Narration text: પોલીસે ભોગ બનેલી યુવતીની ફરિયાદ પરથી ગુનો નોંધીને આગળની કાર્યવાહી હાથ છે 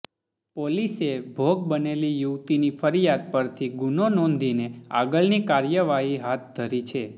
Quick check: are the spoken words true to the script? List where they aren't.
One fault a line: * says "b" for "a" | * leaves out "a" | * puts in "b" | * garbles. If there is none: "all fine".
* puts in "ધરી"